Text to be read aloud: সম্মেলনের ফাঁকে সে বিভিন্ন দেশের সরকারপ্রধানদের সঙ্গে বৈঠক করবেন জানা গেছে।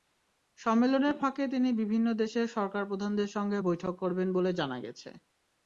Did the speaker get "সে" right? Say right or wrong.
wrong